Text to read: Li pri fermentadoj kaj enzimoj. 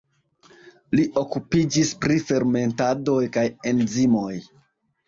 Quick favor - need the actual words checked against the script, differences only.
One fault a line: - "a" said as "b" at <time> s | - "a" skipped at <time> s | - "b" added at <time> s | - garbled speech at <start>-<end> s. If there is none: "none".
- "okupiĝis" added at 1.2 s